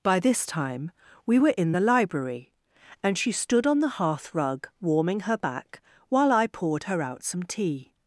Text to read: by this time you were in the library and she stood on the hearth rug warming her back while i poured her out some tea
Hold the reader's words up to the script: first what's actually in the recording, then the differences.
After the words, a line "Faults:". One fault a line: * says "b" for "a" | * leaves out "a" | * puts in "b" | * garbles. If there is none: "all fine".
by this time we were in the library and she stood on the hearth rug warming her back while i poured her out some tea
Faults:
* says "we" for "you"